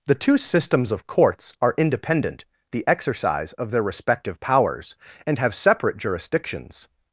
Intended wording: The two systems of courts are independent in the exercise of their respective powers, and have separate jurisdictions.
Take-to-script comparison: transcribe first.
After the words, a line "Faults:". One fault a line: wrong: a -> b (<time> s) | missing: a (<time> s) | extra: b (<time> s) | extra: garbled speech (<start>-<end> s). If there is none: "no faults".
The two systems of courts are independent the exercise of their respective powers, and have separate jurisdictions.
Faults:
missing: in (2.5 s)